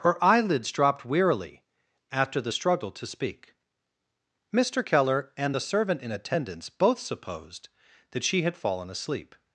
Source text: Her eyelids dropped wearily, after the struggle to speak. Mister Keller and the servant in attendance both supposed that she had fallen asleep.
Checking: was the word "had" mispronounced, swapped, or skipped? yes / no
no